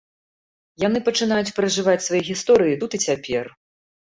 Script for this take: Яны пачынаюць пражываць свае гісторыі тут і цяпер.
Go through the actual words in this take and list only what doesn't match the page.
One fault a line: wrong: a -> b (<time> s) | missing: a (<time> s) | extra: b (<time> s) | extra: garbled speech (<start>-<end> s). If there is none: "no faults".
no faults